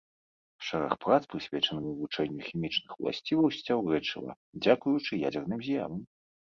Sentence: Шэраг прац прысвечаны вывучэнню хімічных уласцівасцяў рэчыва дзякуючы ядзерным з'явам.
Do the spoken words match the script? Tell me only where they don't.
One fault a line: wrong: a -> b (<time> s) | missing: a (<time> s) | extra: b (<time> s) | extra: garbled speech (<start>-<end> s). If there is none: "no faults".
no faults